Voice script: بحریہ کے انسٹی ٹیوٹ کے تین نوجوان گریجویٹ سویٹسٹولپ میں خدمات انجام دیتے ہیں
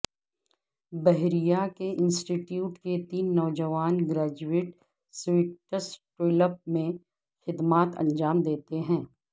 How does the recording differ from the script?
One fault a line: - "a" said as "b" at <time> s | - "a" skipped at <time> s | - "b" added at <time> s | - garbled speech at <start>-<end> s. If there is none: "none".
none